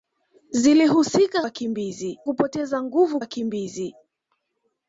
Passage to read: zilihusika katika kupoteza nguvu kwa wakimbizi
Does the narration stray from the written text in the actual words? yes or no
yes